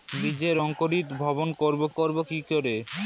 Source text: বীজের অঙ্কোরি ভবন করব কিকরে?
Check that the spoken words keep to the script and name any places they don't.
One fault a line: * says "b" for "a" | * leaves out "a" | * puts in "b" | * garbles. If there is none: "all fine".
* puts in "করব"